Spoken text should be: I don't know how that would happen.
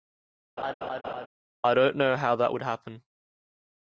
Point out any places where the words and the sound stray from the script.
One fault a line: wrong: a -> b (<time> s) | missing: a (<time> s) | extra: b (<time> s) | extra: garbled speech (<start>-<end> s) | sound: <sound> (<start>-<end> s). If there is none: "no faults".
sound: laugh (0.6-1.3 s)